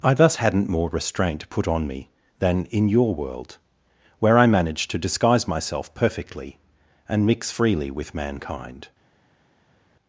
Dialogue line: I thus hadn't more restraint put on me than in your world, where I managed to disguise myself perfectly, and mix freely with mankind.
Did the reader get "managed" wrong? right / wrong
right